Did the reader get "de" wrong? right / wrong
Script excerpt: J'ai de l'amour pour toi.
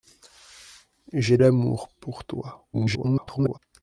wrong